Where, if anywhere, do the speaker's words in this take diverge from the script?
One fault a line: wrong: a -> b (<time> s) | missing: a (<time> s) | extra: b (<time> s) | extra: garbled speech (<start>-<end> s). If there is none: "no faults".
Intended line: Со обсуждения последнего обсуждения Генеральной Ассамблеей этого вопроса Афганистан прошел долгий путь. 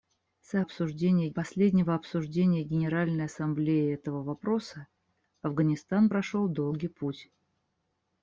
no faults